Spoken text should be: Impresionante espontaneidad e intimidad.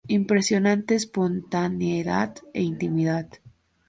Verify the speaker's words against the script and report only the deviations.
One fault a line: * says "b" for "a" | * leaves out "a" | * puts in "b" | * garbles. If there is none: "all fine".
all fine